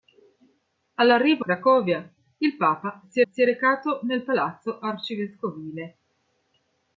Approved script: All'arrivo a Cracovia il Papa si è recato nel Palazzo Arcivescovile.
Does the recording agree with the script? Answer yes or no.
no